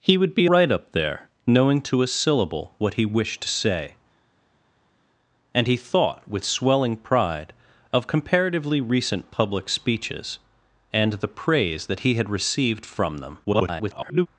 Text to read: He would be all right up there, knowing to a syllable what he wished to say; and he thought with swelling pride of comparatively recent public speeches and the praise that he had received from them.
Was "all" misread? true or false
true